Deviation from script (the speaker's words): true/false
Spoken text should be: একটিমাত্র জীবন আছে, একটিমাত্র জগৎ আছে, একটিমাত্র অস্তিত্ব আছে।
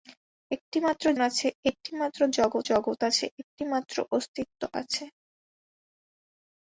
true